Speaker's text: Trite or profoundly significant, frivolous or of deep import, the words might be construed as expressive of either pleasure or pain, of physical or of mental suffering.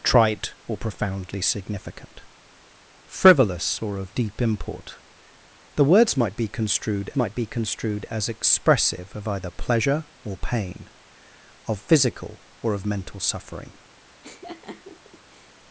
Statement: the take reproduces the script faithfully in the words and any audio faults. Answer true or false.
false